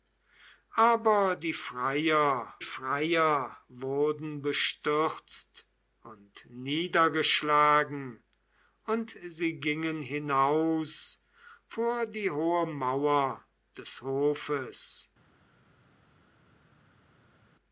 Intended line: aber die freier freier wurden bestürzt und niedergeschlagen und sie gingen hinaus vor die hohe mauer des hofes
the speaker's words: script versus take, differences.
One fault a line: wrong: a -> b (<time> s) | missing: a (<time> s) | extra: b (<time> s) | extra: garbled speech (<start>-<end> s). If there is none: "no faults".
no faults